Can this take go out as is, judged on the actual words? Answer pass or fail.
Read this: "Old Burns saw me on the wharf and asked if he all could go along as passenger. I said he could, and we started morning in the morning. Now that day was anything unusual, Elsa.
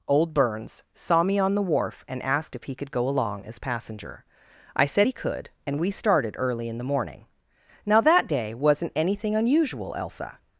fail